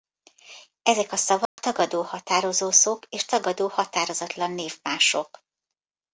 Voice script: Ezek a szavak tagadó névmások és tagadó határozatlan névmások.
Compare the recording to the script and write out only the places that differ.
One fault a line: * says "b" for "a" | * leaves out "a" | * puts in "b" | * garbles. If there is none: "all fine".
* says "határozószók" for "névmások"